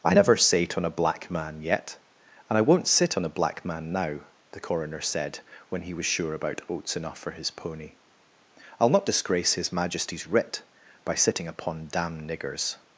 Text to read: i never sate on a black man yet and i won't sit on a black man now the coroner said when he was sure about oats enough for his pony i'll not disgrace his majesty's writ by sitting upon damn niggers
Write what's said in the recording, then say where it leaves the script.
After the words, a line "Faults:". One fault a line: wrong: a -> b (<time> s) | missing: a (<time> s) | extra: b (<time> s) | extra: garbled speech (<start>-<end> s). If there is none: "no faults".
i never sate on a black man yet and i won't sit on a black man now the coroner said when he was sure about oats enough for his pony i'll not disgrace his majesty's writ by sitting upon damn niggers
Faults:
no faults